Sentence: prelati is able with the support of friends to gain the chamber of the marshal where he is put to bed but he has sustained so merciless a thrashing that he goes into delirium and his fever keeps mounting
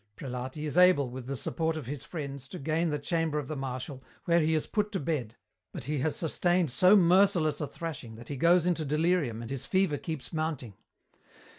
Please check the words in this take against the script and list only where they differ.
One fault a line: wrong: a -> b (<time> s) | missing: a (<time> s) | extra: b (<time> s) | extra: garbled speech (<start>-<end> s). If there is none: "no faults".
extra: his (1.9 s)